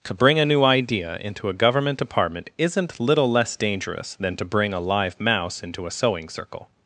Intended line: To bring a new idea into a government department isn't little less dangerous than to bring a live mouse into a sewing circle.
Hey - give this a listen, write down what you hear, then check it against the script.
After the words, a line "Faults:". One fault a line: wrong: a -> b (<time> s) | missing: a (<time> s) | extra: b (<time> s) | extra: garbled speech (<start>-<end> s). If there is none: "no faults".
To bring a new idea into a government department isn't little less dangerous than to bring a live mouse into a sewing circle.
Faults:
no faults